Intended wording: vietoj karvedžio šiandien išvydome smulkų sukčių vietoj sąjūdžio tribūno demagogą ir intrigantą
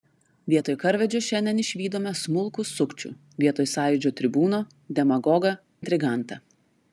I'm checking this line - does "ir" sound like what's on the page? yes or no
no